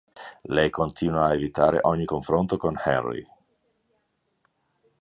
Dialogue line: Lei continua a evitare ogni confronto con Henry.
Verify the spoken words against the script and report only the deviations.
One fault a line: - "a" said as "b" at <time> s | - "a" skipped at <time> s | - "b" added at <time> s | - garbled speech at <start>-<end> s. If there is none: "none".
none